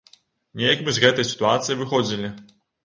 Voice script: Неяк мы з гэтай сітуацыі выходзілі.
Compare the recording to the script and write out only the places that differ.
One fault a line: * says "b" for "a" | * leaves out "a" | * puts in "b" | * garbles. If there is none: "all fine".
all fine